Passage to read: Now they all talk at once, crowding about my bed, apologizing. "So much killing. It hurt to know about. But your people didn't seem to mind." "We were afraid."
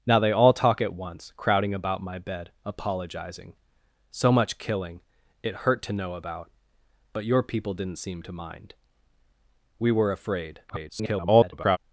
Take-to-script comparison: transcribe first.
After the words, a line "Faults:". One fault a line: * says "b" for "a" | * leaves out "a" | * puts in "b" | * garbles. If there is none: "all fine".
Now they all talk at once, crowding about my bed, apologizing. "So much killing. It hurt to know about. But your people didn't seem to mind." "We were afraid." [garbled]
Faults:
* garbles